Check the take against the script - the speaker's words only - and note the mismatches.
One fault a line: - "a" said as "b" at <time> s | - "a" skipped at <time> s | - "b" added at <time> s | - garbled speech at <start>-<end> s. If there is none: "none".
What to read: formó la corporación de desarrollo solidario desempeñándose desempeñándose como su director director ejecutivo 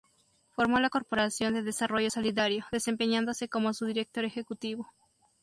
- "desempeñándose" skipped at 3.5 s
- "director" skipped at 4.2 s